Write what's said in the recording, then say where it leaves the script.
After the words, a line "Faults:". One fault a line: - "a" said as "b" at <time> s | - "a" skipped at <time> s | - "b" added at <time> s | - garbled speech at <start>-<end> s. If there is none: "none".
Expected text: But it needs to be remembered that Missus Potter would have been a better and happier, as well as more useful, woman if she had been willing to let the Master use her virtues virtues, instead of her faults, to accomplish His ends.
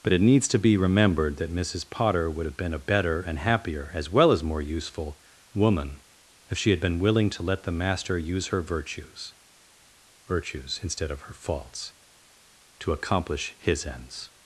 But it needs to be remembered that Missus Potter would have been a better and happier, as well as more useful, woman if she had been willing to let the Master use her virtues virtues, instead of her faults, to accomplish His ends.
Faults:
none